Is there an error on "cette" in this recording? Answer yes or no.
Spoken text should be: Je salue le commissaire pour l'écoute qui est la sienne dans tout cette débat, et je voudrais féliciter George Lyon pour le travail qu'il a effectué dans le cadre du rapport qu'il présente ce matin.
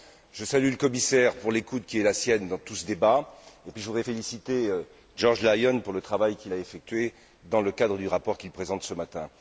yes